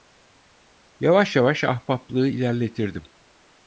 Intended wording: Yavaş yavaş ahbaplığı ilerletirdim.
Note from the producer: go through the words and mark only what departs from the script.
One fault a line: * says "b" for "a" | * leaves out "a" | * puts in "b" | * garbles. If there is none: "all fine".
all fine